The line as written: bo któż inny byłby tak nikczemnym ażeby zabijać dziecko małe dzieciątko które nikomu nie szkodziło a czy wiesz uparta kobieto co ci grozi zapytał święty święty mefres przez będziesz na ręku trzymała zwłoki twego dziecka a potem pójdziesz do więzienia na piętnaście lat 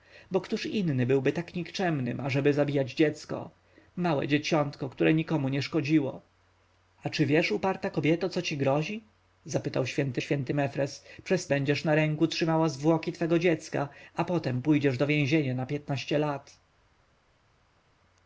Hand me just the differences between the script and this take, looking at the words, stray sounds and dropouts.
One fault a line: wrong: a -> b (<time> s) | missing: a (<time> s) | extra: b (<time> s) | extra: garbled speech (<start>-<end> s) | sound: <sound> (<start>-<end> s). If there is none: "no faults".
no faults